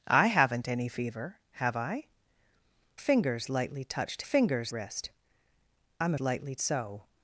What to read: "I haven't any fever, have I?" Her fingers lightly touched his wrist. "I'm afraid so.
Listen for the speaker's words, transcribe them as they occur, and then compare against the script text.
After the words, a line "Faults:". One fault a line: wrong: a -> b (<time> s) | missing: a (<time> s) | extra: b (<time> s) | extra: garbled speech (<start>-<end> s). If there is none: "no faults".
"I haven't any fever, have I?" Fingers lightly touched fingers wrist. "I'm lightly so.
Faults:
missing: Her (2.0 s)
wrong: his -> fingers (4.2 s)
wrong: afraid -> lightly (6.2 s)